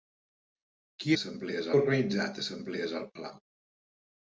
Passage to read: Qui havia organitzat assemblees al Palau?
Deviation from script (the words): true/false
true